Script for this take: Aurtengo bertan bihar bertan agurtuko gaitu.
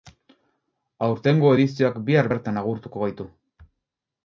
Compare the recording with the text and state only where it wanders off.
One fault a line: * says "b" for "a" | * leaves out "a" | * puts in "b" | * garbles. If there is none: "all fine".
* says "edizioak" for "bertan"